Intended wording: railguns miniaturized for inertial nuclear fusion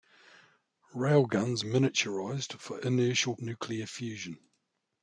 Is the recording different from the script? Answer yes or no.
no